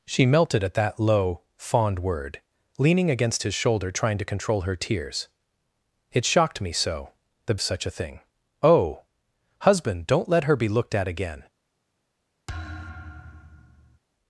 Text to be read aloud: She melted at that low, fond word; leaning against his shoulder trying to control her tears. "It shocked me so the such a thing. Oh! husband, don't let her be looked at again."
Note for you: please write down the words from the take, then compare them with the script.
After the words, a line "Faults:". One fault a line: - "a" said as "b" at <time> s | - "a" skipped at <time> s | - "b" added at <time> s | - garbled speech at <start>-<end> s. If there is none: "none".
She melted at that low, fond word; leaning against his shoulder trying to control her tears. "It shocked me so the such a thing. Oh! husband, don't let her be looked at again."
Faults:
none